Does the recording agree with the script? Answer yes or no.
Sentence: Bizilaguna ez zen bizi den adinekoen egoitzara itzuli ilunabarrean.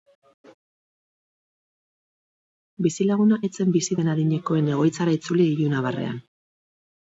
yes